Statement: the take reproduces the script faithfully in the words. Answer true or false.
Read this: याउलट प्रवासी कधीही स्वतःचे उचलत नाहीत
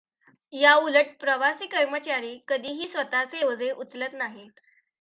false